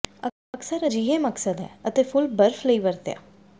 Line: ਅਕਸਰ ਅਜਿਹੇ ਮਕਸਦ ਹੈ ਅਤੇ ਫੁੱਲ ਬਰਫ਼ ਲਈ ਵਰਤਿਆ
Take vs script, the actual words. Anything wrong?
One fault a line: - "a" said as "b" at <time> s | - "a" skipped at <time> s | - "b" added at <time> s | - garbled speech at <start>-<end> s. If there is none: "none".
none